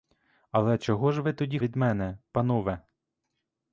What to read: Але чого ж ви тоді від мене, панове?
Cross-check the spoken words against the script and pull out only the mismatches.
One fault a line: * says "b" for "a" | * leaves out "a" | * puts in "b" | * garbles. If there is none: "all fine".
all fine